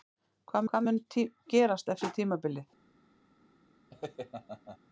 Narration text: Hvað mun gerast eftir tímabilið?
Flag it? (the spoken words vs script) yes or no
yes